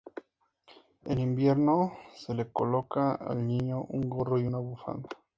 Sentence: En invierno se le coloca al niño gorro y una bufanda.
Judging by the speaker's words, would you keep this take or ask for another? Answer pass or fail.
fail